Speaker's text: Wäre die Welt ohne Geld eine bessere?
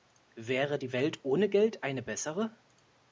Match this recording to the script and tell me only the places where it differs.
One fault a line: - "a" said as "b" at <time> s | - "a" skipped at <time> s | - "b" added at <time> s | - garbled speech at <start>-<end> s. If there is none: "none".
none